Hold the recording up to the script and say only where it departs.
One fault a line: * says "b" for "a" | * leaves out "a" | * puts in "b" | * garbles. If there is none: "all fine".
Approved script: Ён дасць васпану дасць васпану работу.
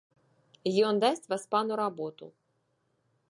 * leaves out "дасць васпану"